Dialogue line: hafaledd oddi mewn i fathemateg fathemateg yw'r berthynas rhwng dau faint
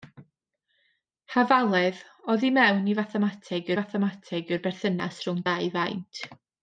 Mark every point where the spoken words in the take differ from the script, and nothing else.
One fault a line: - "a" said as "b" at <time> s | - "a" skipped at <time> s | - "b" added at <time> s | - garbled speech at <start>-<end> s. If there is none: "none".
none